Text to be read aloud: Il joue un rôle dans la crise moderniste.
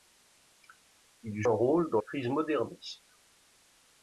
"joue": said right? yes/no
no